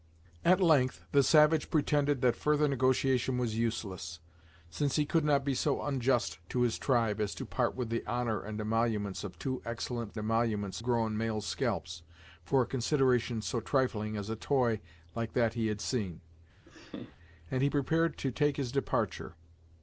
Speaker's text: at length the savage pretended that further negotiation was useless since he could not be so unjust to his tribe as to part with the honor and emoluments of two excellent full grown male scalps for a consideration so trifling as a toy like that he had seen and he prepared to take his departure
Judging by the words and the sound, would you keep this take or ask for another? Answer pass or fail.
fail